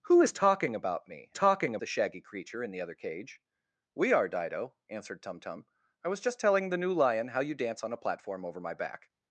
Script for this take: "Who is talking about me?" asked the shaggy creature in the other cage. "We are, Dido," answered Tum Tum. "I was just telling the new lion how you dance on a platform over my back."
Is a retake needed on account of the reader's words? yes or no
yes